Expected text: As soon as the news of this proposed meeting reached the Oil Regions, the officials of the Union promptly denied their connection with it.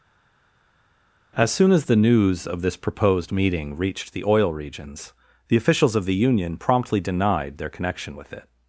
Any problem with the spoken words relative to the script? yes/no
no